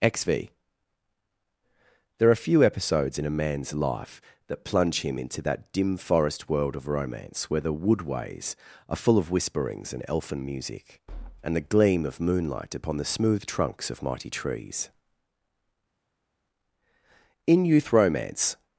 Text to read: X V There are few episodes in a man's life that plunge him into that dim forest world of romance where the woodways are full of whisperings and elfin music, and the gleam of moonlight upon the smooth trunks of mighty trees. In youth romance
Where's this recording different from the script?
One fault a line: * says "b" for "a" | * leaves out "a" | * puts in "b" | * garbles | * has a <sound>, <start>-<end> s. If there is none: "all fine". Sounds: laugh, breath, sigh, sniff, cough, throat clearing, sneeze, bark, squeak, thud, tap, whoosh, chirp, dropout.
all fine